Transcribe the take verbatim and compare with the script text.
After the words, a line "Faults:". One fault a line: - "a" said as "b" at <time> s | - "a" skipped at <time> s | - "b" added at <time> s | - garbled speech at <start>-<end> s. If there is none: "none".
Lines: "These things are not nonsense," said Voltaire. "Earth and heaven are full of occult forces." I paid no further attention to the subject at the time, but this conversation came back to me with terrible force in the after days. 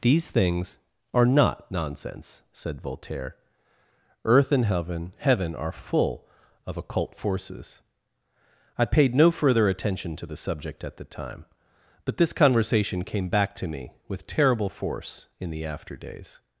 "These things are not nonsense," said Voltaire. "Earth and heaven heaven are full of occult forces." I paid no further attention to the subject at the time, but this conversation came back to me with terrible force in the after days.
Faults:
- "heaven" added at 5.2 s